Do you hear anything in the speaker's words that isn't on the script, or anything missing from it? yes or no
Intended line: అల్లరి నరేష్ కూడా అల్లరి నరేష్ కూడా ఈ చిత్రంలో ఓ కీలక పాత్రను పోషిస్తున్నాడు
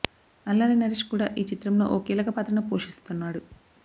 yes